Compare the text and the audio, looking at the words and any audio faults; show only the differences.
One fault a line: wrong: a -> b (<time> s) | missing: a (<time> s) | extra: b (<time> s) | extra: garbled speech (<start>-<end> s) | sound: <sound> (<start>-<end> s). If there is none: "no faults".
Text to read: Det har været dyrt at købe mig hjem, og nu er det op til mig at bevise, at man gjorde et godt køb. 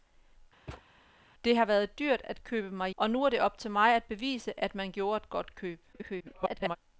sound: thud (0.7-0.9 s)
missing: hjem (2.9 s)
extra: garbled speech (5.9-6.8 s)